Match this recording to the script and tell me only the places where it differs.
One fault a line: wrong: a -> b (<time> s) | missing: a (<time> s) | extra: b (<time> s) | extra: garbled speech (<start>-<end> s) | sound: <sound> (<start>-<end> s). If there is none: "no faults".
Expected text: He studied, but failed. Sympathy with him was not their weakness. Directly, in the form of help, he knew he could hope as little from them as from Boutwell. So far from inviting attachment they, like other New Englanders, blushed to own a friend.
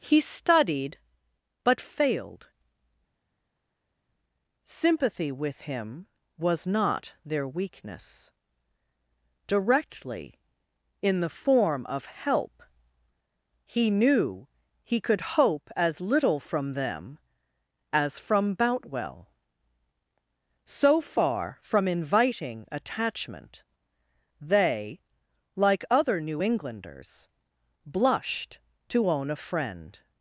no faults